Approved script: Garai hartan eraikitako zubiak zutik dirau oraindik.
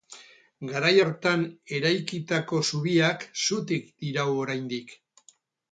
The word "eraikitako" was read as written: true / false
true